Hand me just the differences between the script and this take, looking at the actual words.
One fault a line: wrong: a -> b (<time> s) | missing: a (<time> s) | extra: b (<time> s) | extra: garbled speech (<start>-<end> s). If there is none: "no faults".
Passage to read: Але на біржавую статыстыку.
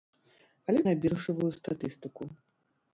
no faults